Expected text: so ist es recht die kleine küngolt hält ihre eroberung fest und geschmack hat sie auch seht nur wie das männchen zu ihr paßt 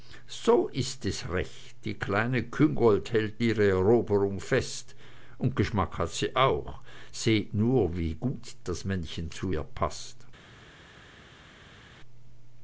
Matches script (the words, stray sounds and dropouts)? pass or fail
fail